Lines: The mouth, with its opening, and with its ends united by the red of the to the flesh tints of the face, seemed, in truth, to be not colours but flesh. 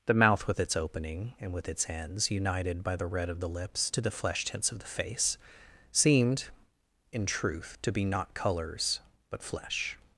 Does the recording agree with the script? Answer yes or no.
no